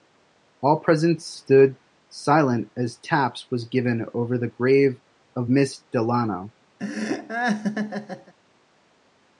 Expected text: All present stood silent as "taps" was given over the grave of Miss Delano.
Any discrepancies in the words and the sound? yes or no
yes